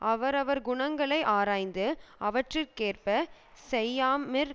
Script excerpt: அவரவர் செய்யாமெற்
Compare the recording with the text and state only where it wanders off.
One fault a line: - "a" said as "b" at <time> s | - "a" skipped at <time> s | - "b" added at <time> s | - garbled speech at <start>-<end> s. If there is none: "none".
- "குணங்களை ஆராய்ந்து அவற்றிற்கேற்பச்" added at 0.6 s